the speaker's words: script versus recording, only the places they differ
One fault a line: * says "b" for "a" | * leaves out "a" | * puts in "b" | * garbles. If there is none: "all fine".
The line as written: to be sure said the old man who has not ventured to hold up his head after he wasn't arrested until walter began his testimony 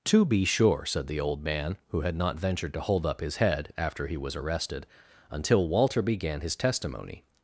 * says "had" for "has"
* says "was" for "wasn't"